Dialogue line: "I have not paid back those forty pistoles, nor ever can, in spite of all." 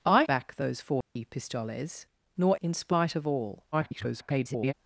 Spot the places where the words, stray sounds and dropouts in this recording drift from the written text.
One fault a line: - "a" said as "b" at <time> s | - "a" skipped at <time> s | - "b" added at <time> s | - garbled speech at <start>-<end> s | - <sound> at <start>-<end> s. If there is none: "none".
- "have not paid" skipped at 0.2 s
- dropout at 1.0-1.2 s
- "ever can" skipped at 2.6 s
- garbled speech at 3.7-4.7 s